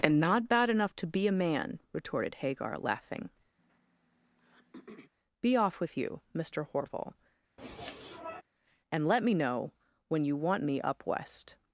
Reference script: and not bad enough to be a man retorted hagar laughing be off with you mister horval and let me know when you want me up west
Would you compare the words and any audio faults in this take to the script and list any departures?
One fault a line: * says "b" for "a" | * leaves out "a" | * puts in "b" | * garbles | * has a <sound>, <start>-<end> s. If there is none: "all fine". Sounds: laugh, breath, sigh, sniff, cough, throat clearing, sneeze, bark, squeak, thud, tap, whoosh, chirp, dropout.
* has a throat clearing, 3.6-5.1 s
* has a sniff, 7.6-8.4 s